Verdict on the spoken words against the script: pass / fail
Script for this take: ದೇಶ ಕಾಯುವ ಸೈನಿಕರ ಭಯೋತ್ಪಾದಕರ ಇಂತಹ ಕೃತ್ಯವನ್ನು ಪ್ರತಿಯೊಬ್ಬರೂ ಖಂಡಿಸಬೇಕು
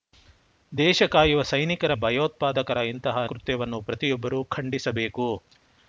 pass